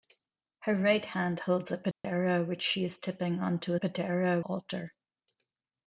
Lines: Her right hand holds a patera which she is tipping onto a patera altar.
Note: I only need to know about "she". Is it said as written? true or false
true